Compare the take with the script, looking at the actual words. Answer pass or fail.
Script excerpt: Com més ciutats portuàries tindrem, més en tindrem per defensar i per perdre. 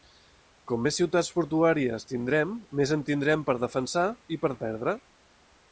pass